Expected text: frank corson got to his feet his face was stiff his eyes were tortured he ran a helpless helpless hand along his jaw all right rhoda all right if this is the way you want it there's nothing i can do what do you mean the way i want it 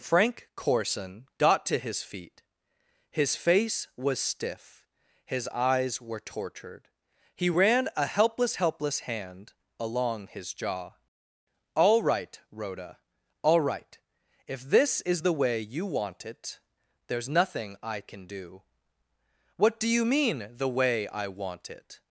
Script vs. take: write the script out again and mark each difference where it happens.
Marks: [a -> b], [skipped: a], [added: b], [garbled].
frank corson got to his feet his face was stiff his eyes were tortured he ran a helpless helpless hand along his jaw all right rhoda all right if this is the way you want it there's nothing i can do what do you mean the way i want it